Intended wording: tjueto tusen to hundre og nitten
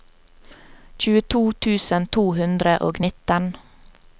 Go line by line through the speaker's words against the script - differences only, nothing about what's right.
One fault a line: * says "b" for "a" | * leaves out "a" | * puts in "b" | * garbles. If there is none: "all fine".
all fine